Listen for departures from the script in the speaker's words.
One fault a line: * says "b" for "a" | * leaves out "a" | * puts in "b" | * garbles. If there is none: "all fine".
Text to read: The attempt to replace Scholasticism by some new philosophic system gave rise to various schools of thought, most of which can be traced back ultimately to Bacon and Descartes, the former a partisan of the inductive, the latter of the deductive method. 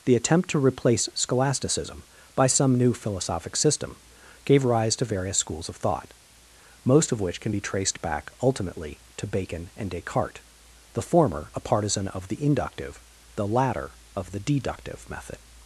all fine